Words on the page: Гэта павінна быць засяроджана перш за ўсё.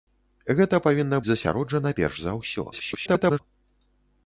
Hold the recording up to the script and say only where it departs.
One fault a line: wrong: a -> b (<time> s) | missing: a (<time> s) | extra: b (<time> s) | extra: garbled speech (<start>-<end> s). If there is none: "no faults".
missing: быць (1.2 s)
extra: garbled speech (2.7-3.4 s)